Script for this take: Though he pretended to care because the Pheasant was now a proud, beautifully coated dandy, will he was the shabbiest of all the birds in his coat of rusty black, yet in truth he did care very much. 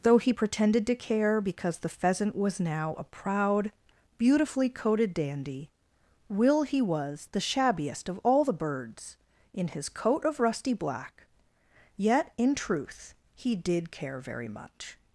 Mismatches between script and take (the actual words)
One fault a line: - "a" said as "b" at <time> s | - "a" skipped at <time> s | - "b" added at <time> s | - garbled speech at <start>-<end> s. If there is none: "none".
none